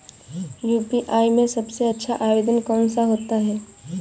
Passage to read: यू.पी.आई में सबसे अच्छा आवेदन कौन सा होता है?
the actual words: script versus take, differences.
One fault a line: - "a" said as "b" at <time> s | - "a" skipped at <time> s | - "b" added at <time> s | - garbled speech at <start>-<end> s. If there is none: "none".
none